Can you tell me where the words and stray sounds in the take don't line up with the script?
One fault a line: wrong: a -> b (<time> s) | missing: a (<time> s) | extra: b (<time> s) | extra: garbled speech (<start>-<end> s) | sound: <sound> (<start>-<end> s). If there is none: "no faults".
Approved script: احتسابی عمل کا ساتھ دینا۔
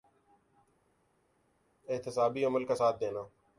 no faults